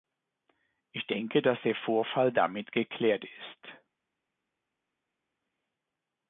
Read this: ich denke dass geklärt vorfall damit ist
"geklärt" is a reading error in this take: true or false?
true